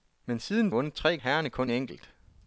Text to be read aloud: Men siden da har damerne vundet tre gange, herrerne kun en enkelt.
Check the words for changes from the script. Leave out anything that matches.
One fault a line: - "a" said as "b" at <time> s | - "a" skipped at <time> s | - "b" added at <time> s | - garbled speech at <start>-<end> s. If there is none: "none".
- "da har damerne" skipped at 0.7 s
- "gange" skipped at 1.2 s
- "en" skipped at 1.7 s